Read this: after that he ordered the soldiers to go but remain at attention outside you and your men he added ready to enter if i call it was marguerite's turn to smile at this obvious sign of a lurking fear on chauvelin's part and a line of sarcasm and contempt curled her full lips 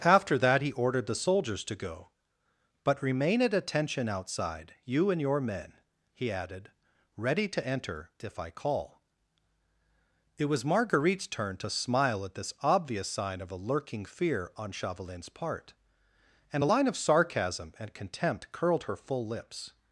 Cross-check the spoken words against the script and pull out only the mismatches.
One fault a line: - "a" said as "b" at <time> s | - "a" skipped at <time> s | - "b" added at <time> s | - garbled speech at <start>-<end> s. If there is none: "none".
none